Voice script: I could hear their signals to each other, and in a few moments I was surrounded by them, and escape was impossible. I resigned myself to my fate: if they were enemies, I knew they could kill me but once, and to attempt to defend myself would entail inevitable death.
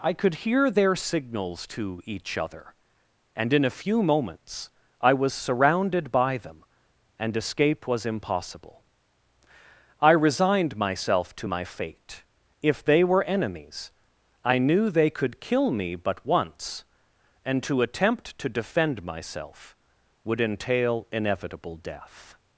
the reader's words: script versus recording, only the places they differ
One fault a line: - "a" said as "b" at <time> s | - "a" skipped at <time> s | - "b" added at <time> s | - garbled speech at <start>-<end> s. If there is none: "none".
none